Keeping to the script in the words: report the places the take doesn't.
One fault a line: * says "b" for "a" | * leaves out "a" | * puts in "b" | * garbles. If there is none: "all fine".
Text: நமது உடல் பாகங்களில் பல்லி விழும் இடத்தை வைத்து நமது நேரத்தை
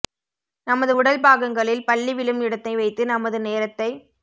all fine